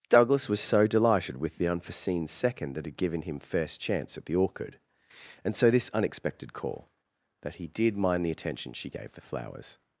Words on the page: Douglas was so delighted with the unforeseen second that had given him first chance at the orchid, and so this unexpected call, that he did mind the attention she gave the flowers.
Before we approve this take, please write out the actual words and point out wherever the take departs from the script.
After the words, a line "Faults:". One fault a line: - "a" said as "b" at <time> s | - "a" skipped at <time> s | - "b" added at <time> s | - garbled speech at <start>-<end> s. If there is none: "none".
Douglas was so delighted with the unforeseen second that had given him first chance at the orchid, and so this unexpected call, that he did mind the attention she gave the flowers.
Faults:
none